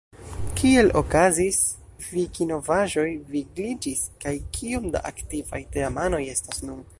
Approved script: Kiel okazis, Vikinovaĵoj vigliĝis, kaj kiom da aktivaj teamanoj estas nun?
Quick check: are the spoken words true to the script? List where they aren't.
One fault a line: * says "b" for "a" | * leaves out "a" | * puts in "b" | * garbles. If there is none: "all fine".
all fine